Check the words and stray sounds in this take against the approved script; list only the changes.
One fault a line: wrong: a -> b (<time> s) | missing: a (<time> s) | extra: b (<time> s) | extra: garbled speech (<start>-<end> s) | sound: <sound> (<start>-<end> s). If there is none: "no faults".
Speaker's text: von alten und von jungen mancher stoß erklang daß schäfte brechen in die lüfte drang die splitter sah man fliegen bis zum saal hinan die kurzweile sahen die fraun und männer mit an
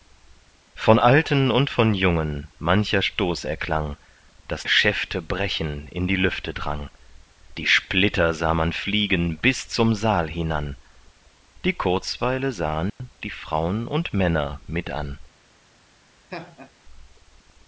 sound: dropout (12.9-13.0 s)
sound: laugh (16.3-16.7 s)